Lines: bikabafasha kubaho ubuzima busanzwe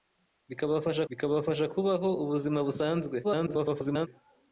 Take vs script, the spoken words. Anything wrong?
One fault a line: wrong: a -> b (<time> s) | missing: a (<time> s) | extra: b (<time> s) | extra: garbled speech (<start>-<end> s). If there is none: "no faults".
extra: bikabafasha (1.1 s)
extra: garbled speech (3.2-4.1 s)